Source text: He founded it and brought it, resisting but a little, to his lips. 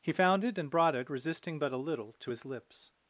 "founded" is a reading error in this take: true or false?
true